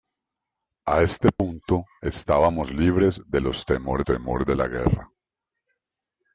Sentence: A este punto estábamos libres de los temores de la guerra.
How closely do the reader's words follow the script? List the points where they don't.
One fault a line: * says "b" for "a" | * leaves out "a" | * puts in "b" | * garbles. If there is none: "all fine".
* puts in "temores"